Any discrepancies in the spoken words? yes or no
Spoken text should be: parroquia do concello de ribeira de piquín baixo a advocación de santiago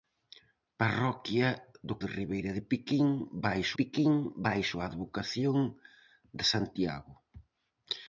yes